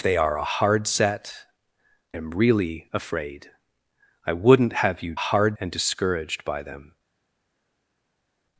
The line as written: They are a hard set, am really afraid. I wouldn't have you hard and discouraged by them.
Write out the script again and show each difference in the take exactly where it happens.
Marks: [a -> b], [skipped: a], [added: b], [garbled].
They are a hard set, am really afraid. I wouldn't have you hard and discouraged by them.